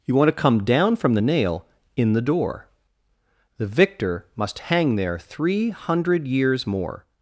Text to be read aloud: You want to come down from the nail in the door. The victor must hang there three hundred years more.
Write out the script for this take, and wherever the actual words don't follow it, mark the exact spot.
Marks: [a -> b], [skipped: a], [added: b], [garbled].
You want to come down from the nail in the door. The victor must hang there three hundred years more.